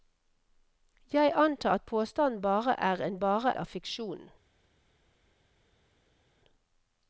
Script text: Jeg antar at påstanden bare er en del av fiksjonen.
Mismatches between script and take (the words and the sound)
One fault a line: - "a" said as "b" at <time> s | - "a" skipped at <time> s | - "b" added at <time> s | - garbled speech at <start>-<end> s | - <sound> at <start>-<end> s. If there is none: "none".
- "del" said as "bare" at 3.2 s